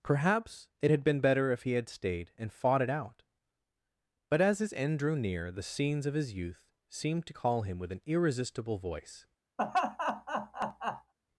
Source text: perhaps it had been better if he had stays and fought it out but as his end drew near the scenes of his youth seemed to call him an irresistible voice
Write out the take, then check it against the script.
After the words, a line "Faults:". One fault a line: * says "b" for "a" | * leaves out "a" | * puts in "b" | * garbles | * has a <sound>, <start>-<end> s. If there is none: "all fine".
perhaps it had been better if he had stayed and fought it out but as his end drew near the scenes of his youth seemed to call him with an irresistible voice
Faults:
* says "stayed" for "stays"
* puts in "with"
* has a laugh, 9.6-11.1 s